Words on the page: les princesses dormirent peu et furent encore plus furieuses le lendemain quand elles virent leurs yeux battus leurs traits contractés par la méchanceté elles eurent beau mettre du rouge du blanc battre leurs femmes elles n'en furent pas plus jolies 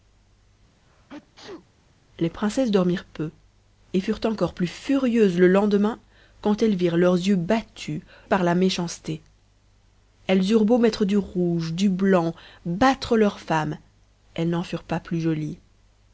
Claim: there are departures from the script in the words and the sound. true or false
true